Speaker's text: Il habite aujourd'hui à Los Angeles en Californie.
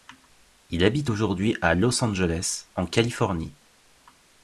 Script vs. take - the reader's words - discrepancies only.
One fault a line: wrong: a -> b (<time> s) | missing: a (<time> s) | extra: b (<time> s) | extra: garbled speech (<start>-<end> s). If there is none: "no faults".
no faults